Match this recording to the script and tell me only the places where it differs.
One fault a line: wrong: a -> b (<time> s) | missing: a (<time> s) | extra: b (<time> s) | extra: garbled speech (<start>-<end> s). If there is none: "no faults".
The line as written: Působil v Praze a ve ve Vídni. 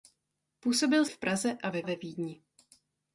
no faults